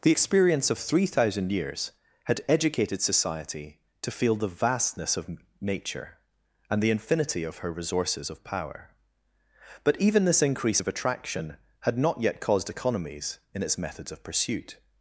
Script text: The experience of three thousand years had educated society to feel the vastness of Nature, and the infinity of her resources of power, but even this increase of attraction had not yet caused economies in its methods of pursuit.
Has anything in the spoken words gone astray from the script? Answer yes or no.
no